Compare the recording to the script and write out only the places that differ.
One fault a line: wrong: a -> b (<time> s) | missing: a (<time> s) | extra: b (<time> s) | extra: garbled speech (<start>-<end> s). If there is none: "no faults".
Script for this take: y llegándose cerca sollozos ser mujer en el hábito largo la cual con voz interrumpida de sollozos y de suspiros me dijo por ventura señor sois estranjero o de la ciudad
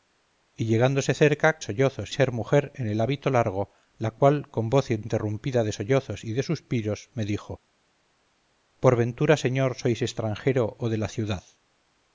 no faults